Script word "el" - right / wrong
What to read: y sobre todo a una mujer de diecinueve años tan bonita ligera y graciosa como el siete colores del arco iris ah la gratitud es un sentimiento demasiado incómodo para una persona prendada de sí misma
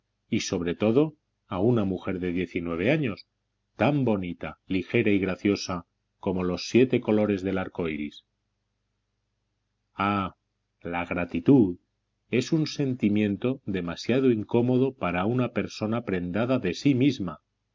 wrong